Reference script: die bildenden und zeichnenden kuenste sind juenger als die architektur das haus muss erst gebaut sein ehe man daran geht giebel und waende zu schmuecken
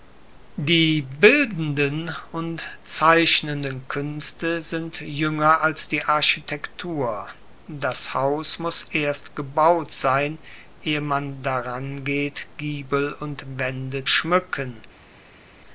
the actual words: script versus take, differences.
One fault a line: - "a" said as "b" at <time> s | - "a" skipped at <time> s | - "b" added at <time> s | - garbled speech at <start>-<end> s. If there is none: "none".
- "zu" skipped at 14.1 s